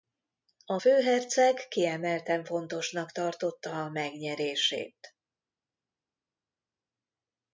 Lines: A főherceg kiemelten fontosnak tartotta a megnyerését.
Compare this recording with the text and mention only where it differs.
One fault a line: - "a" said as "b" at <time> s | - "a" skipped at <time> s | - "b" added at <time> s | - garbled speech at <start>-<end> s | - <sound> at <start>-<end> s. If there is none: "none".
none